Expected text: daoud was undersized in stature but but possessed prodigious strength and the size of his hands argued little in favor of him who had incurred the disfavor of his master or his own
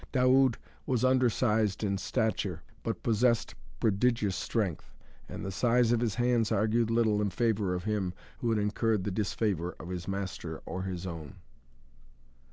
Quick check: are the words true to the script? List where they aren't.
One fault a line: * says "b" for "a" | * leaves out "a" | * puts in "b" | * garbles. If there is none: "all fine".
* leaves out "but"